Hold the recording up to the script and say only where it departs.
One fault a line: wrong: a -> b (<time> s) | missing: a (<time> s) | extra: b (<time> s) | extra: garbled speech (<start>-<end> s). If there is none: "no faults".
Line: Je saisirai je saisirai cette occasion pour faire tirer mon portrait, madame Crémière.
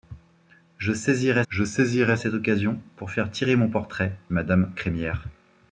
no faults